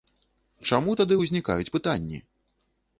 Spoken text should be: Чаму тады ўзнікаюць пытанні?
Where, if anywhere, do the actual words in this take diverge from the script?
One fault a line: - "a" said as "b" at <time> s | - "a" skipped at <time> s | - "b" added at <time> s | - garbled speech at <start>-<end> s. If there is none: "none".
none